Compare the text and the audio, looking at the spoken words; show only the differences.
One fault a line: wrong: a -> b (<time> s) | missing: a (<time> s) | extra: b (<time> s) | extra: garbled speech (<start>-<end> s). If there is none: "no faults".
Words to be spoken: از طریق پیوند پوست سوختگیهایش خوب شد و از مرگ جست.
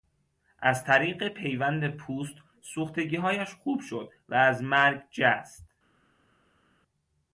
no faults